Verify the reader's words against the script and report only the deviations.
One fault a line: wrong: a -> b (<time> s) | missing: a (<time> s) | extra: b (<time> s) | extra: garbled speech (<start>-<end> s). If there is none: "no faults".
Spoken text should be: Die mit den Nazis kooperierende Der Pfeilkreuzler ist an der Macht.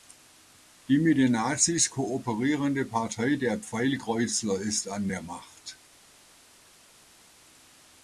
extra: Partei (2.9 s)